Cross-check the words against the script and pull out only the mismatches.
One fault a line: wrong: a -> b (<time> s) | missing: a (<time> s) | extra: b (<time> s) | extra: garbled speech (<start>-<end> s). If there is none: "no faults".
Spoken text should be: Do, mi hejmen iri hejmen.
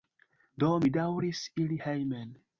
wrong: hejmen -> daŭris (0.9 s)